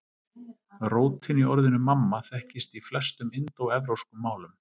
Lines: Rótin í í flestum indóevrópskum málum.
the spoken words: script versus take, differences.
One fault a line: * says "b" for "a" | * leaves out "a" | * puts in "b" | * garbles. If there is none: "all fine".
* puts in "orðinu mamma þekkist"